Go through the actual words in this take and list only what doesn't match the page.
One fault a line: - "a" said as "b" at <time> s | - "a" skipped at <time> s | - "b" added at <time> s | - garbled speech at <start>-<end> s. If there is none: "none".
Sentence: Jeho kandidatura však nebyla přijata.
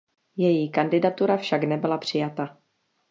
- "Jeho" said as "Její" at 0.4 s